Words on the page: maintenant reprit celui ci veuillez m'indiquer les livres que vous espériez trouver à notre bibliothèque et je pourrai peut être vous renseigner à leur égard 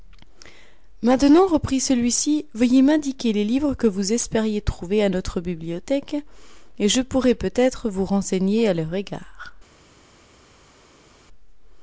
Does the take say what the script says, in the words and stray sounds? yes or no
yes